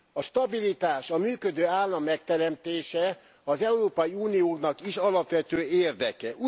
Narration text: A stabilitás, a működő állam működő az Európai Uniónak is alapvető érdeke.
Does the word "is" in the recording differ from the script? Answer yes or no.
no